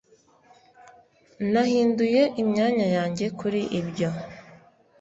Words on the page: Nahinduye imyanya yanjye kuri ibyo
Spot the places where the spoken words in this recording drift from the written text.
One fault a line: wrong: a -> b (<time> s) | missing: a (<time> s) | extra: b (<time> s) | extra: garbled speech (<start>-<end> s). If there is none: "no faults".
no faults